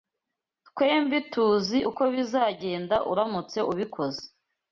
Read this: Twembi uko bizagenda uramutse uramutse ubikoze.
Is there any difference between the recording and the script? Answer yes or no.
yes